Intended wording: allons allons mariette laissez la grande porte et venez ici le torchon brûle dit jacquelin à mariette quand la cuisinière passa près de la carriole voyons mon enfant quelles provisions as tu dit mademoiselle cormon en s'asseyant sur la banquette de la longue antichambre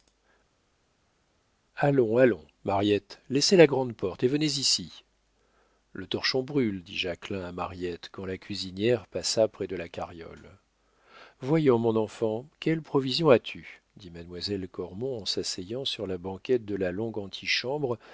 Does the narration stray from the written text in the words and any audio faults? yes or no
no